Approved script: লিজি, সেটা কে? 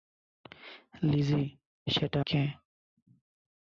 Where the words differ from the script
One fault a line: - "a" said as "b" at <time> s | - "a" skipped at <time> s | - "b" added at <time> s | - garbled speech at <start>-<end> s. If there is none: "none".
none